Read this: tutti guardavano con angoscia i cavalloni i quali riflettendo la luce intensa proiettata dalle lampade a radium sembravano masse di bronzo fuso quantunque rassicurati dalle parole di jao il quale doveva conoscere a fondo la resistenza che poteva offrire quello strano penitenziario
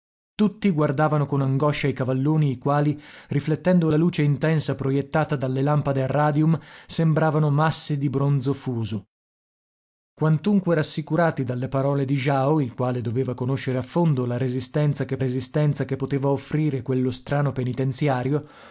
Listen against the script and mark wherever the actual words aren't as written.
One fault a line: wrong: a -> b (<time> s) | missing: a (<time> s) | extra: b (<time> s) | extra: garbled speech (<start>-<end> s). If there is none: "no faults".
extra: resistenza che (15.2 s)